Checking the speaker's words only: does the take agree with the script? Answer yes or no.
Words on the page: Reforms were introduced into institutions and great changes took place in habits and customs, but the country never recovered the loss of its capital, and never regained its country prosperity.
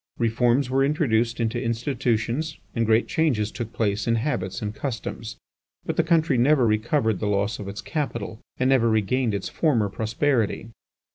no